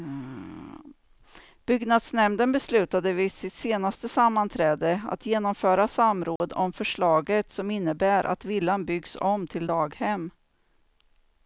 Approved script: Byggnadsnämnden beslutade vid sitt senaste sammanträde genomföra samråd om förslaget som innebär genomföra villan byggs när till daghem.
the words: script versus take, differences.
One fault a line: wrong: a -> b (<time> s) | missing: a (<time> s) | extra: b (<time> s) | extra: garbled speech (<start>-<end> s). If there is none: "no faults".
extra: att (5.1 s)
wrong: genomföra -> att (8.2 s)
wrong: när -> om (9.2 s)